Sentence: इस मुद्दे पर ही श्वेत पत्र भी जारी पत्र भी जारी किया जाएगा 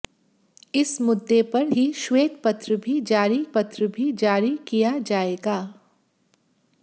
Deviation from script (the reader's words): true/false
false